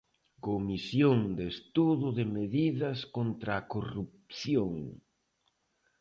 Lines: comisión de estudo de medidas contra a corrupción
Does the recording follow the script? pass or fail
pass